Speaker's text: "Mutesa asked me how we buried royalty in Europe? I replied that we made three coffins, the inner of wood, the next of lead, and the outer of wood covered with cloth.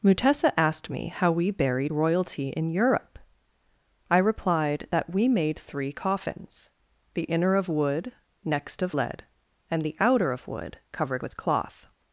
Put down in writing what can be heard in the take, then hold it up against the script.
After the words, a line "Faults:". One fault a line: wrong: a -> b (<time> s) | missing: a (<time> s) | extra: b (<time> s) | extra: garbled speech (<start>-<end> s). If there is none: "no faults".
"Mutesa asked me how we buried royalty in Europe? I replied that we made three coffins, the inner of wood, next of lead, and the outer of wood covered with cloth.
Faults:
missing: the (8.1 s)